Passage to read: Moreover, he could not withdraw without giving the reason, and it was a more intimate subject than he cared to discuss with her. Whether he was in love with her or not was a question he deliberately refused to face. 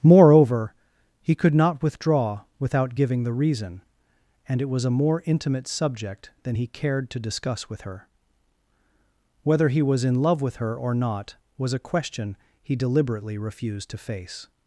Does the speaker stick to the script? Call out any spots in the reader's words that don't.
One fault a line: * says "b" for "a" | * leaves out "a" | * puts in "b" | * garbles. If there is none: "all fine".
all fine